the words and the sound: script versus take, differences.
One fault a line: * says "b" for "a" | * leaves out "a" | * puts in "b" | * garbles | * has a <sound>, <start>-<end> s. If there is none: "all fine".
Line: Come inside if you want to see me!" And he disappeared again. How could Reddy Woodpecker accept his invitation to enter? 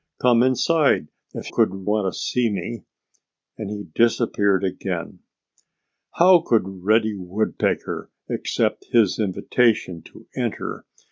* says "could" for "you"